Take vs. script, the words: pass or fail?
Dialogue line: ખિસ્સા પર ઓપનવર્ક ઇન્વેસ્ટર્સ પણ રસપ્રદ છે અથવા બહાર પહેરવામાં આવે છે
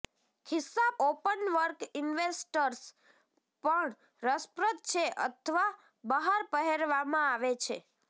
fail